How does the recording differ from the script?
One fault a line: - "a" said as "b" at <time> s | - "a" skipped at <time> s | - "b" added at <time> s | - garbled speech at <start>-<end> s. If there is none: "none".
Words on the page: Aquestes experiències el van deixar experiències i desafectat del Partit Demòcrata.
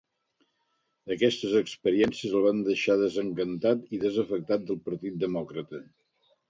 - "experiències" said as "desencantat" at 3.0 s